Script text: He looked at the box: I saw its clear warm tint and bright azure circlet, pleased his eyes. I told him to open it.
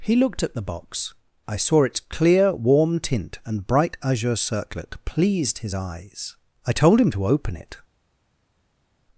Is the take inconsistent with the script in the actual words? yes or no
no